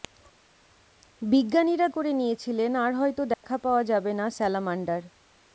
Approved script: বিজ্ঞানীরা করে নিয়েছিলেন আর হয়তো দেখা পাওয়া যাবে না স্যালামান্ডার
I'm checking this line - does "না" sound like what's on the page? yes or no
yes